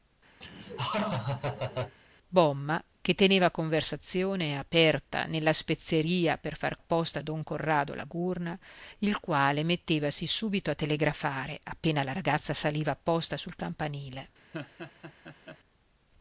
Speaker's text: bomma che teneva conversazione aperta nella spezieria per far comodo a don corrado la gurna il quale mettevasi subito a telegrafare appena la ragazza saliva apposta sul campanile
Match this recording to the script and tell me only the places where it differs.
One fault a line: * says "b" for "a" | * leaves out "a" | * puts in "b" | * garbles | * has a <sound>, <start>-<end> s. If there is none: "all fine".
* has a laugh, 0.4-2.0 s
* says "apposta" for "comodo"
* has a laugh, 14.5-15.6 s